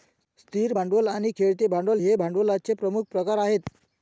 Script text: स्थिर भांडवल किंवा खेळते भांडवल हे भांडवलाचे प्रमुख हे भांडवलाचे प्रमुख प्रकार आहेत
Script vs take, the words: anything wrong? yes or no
yes